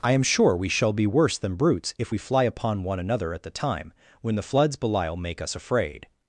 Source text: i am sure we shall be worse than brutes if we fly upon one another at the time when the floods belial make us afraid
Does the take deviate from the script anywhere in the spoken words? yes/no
no